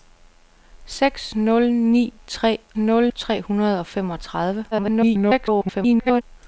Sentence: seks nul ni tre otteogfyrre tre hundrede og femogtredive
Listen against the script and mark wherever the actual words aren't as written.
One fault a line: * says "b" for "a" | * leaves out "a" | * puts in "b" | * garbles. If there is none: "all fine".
* says "nul" for "otteogfyrre"
* garbles